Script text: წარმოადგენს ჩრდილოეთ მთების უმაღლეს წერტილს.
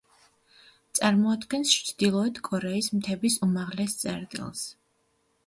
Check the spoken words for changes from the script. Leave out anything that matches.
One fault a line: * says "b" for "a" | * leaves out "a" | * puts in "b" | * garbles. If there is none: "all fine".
* puts in "კორეის"